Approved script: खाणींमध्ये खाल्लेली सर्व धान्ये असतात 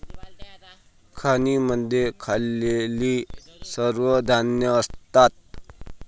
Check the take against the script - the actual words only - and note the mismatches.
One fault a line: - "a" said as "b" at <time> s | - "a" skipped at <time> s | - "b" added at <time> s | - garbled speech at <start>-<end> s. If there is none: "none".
none